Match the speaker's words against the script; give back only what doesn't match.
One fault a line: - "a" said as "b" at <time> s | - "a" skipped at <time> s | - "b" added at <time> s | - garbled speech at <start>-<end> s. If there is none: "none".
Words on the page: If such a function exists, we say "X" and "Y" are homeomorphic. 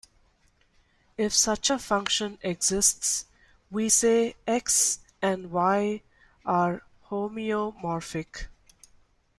none